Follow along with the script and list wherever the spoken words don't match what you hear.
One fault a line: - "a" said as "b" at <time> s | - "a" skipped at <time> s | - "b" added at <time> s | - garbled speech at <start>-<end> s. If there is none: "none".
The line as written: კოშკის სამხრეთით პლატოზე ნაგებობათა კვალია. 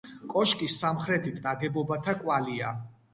- "პლატოზე" skipped at 1.4 s